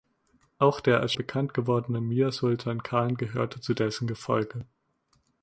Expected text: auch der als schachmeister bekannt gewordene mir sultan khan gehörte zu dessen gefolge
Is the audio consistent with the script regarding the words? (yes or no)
no